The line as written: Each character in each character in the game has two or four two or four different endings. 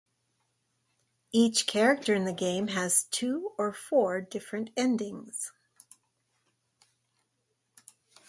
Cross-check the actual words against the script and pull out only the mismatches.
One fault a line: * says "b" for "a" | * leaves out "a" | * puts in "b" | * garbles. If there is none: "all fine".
* leaves out "each character in"
* leaves out "two or four"